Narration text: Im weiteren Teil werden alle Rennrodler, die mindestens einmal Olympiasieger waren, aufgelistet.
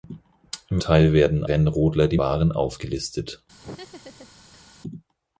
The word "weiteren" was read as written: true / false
false